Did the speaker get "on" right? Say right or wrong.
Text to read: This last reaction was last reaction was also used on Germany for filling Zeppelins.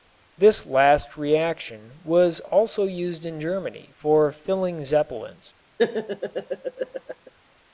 wrong